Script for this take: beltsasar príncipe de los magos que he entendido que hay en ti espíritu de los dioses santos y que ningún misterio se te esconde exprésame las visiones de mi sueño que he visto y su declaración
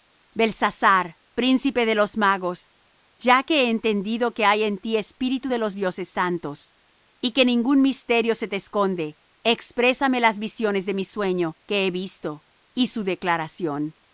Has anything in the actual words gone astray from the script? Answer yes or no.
yes